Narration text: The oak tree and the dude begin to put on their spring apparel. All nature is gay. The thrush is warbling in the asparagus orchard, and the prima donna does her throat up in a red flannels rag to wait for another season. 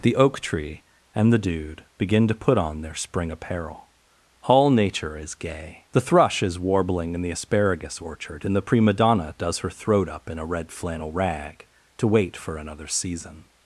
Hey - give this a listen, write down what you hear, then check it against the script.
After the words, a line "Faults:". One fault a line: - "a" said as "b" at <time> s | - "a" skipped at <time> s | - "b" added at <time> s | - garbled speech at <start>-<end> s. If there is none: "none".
The oak tree and the dude begin to put on their spring apparel. All nature is gay. The thrush is warbling in the asparagus orchard, and the prima donna does her throat up in a red flannel rag to wait for another season.
Faults:
- "flannels" said as "flannel" at 10.7 s